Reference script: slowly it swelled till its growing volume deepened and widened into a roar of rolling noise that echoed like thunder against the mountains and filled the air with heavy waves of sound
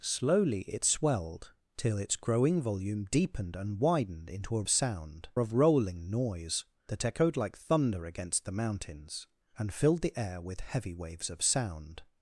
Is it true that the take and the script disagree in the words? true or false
true